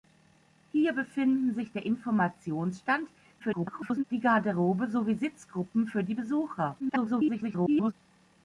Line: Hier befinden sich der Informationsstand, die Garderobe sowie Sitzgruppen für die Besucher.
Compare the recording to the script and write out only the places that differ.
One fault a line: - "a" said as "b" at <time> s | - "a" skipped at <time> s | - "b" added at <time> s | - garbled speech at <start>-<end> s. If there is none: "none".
- garbled speech at 3.4-4.0 s
- garbled speech at 6.8-7.9 s